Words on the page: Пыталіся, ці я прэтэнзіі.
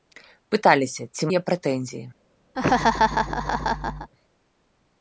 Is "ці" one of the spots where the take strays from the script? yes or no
no